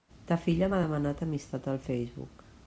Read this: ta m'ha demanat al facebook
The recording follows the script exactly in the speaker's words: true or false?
false